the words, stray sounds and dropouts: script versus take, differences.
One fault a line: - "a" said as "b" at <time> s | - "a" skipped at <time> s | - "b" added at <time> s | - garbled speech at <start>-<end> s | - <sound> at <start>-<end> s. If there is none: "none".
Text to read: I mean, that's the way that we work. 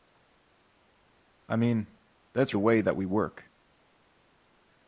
none